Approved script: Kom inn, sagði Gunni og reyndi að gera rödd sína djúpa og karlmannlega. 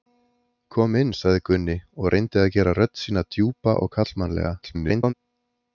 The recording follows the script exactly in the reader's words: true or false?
false